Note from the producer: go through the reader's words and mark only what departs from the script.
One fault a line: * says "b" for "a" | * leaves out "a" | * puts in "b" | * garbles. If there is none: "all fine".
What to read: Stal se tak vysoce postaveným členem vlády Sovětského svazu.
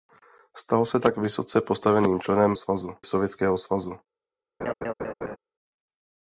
* says "svazu" for "vlády"